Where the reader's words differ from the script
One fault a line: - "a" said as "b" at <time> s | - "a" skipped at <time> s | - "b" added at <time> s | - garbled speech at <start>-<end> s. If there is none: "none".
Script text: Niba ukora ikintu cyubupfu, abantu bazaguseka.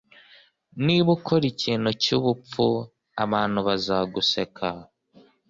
none